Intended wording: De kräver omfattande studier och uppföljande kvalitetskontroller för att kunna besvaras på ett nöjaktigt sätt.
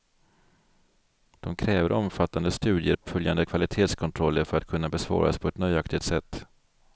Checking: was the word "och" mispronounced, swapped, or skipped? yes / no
yes